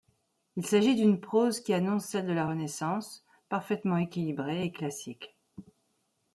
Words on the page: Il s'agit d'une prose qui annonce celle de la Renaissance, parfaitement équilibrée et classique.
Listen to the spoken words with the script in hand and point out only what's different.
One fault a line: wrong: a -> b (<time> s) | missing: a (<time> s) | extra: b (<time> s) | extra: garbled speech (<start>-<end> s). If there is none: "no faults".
no faults